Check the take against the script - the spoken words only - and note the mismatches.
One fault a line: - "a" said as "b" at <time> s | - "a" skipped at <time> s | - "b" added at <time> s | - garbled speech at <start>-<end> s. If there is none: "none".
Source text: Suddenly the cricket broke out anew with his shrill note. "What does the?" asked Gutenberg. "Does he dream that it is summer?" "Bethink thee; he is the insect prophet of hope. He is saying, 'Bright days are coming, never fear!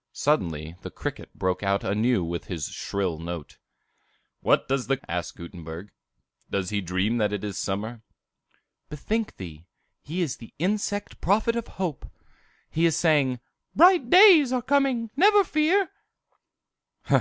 none